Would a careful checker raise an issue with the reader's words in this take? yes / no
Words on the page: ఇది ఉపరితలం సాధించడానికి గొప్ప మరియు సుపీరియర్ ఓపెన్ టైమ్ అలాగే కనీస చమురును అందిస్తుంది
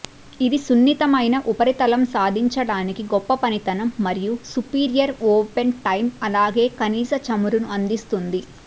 yes